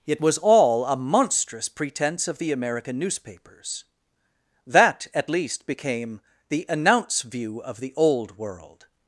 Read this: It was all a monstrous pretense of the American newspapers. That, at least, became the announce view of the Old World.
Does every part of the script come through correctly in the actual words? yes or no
yes